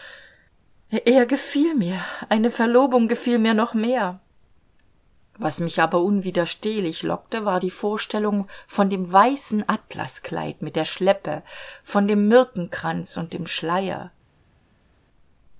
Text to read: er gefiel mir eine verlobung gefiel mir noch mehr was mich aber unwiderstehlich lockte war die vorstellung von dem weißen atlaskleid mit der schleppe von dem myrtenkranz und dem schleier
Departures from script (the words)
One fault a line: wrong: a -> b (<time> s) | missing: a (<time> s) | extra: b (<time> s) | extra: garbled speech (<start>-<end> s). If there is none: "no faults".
no faults